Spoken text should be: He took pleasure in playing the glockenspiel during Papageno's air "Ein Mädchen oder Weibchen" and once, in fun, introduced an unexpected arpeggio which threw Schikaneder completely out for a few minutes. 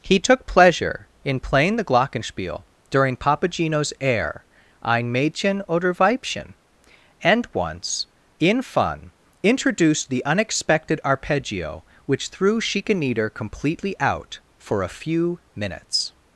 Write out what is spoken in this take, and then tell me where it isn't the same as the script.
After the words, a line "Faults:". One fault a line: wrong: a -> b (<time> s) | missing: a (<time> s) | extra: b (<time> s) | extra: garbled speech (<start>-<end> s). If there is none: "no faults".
He took pleasure in playing the glockenspiel during Papageno's air "Ein Mädchen oder Weibchen" and once, in fun, introduced the unexpected arpeggio which threw Schikaneder completely out for a few minutes.
Faults:
wrong: an -> the (10.1 s)